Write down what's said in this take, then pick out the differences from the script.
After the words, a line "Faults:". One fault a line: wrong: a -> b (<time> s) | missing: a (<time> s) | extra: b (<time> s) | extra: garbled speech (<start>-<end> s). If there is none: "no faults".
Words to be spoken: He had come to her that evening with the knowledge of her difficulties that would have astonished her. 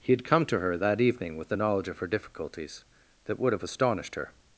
He had come to her that evening with the knowledge of her difficulties that would have astonished her.
Faults:
no faults